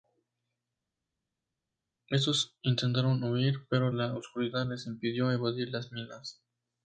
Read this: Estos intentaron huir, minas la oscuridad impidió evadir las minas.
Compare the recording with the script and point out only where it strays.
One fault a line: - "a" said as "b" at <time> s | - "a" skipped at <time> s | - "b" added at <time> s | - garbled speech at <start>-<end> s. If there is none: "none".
- "minas" said as "pero" at 3.7 s
- "les" added at 4.6 s